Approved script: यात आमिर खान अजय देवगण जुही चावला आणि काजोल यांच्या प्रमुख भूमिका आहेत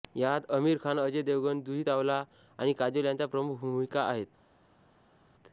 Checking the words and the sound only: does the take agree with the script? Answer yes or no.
yes